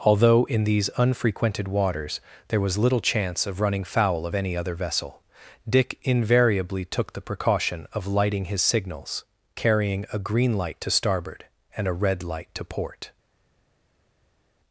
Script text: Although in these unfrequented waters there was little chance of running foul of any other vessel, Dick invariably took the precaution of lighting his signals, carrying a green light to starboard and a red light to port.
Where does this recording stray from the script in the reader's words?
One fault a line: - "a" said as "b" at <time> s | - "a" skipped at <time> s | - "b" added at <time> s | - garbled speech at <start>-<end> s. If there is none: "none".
none